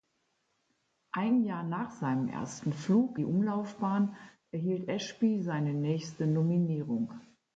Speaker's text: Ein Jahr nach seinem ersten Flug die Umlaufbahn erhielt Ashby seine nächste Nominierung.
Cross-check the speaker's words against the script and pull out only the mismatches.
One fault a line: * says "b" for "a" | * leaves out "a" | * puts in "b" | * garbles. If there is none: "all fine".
all fine